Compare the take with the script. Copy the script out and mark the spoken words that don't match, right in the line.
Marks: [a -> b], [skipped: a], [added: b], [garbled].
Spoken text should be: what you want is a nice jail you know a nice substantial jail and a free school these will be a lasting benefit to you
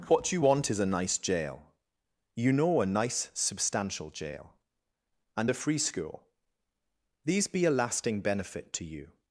what you want is a nice jail you know a nice substantial jail and a free school these [skipped: will] be a lasting benefit to you